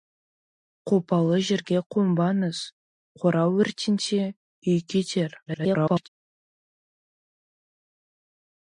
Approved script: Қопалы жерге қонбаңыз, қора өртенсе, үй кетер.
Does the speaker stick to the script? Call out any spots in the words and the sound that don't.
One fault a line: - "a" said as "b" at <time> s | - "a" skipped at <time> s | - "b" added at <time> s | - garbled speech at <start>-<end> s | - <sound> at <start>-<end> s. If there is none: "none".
- garbled speech at 5.5-6.1 s